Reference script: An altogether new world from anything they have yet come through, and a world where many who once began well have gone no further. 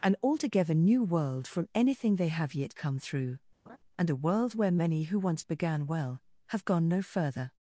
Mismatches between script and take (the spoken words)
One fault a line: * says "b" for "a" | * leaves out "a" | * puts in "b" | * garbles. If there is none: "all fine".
all fine